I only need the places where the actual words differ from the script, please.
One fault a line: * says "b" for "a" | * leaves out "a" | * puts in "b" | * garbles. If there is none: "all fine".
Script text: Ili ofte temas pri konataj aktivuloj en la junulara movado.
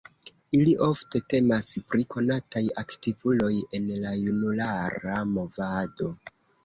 all fine